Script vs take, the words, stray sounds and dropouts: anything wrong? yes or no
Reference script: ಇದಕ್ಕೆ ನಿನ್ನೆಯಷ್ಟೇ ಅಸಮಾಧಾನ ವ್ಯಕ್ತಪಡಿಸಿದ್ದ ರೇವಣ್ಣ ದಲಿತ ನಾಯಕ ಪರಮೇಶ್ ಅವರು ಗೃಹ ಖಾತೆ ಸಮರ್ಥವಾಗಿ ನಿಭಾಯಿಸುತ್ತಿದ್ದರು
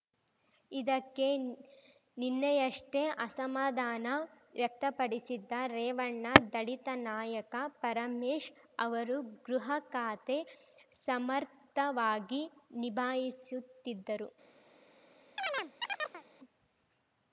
yes